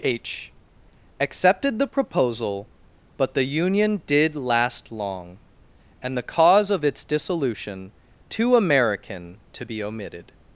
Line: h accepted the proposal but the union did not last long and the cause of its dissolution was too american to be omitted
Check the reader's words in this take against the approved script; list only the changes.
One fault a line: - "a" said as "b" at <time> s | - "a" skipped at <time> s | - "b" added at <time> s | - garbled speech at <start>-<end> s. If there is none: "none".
- "not" skipped at 4.3 s
- "was" skipped at 7.9 s